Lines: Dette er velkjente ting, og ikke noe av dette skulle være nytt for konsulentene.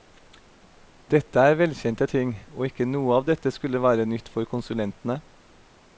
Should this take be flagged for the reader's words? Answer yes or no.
no